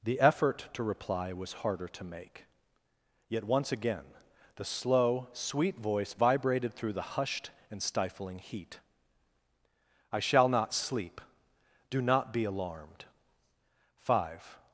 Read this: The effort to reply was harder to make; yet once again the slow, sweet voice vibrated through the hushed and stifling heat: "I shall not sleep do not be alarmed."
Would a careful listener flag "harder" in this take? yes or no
no